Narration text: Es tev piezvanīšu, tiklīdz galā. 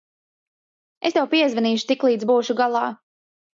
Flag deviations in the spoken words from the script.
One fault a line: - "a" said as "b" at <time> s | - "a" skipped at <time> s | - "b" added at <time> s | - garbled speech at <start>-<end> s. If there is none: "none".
- "būšu" added at 2.3 s